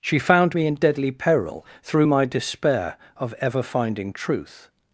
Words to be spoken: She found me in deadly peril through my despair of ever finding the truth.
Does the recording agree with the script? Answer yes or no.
no